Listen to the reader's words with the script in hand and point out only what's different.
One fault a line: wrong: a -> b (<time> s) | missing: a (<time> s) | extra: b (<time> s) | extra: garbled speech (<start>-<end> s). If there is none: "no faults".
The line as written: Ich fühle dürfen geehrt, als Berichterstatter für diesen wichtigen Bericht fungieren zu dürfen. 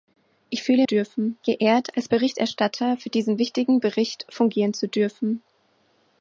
no faults